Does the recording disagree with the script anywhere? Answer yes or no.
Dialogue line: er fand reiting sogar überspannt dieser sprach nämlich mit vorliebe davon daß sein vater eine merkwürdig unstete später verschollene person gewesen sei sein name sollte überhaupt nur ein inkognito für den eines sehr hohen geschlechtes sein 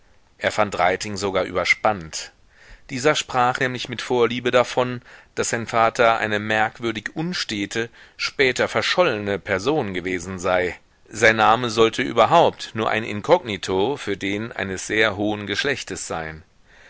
no